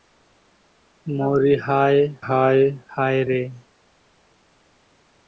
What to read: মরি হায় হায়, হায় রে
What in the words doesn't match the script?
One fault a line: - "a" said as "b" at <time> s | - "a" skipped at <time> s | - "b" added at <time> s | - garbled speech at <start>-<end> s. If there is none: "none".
none